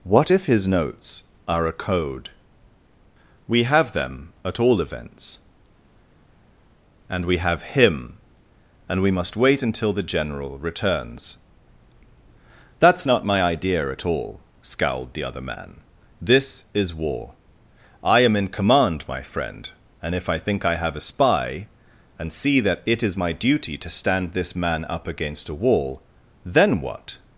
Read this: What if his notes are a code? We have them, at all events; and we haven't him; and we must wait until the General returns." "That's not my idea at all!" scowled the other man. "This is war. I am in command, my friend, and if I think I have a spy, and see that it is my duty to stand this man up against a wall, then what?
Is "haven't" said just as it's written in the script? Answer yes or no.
no